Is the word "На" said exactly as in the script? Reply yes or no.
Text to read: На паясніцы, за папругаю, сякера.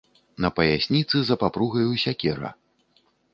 yes